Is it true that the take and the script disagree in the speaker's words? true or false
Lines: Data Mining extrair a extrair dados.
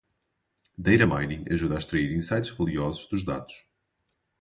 true